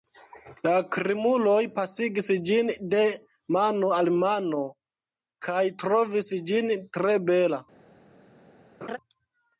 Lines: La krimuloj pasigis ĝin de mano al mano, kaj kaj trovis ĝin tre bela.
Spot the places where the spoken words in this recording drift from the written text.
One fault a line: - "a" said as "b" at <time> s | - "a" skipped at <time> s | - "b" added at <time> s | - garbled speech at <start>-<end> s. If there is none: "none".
- "kaj" skipped at 5.6 s